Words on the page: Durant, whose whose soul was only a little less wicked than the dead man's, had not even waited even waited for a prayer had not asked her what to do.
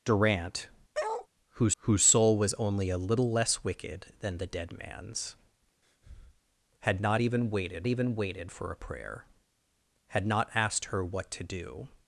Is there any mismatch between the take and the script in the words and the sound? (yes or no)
yes